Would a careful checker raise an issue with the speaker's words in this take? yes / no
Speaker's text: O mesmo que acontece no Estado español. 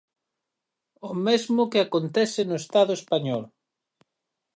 no